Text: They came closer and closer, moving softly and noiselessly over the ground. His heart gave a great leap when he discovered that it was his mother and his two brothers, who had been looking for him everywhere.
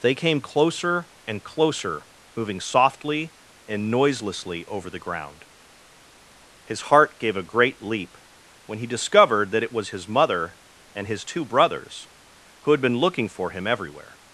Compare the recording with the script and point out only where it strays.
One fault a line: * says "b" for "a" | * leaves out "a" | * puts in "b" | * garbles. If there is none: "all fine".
all fine